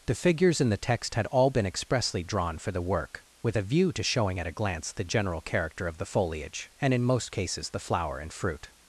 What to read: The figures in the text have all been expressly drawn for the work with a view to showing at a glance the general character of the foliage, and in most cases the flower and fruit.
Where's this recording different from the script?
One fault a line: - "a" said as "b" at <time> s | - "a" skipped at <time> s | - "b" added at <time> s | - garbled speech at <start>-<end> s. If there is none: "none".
- "have" said as "had" at 1.1 s